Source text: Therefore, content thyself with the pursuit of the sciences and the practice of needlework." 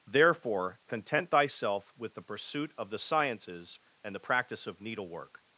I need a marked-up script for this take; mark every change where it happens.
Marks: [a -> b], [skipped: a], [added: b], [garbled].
Therefore, content thyself with the pursuit of the sciences and the practice of needlework."